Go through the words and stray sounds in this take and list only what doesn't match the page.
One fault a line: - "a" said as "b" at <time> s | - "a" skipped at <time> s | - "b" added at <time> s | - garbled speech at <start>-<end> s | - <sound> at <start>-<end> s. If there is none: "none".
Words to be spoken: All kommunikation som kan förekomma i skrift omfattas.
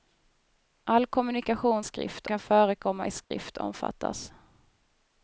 - "som" said as "skrift" at 1.8 s
- dropout at 3.2-3.3 s